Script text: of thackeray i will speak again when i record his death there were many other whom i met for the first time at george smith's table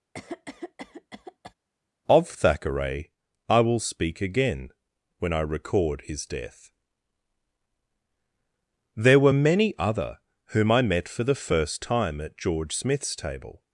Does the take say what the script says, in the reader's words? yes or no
yes